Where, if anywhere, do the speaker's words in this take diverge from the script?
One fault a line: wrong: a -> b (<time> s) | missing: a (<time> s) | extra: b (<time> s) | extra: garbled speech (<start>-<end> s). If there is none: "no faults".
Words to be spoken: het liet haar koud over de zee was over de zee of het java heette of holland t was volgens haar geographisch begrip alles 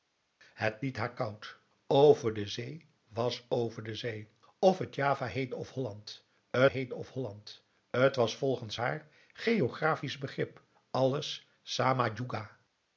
extra: heette of holland (6.6 s)